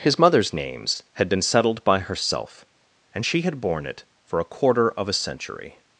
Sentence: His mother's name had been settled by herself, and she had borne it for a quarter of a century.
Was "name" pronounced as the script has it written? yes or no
no